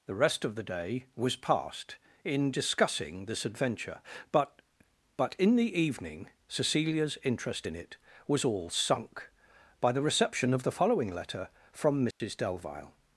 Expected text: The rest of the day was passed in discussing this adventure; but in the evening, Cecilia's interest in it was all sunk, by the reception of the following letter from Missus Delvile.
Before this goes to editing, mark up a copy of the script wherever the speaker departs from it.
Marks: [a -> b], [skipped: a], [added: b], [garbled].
The rest of the day was passed in discussing this adventure; but [added: but] in the evening, Cecilia's interest in it was all sunk, by the reception of the following letter from Missus Delvile.